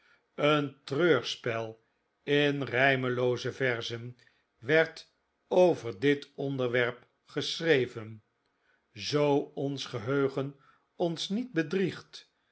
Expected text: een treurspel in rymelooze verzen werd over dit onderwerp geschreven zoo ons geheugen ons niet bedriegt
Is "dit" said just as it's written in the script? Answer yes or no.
yes